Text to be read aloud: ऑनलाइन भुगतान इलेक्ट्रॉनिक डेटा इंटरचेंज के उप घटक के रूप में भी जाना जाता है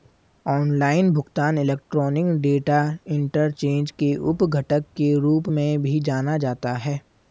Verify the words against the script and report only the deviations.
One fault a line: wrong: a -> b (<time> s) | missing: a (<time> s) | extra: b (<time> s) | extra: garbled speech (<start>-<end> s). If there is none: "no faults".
no faults